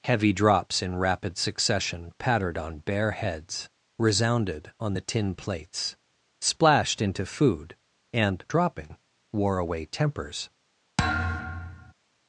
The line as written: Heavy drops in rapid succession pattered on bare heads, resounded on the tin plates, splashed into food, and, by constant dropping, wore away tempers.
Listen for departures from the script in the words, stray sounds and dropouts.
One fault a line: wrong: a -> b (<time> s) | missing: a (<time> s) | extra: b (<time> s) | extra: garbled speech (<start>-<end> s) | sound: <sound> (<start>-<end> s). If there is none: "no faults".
missing: by constant (8.4 s)
sound: thud (11.0-11.9 s)